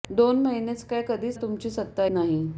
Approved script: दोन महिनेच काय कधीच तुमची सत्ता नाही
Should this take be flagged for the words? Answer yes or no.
no